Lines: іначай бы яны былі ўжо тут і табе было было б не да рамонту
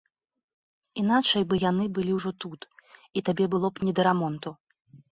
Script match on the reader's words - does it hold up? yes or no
no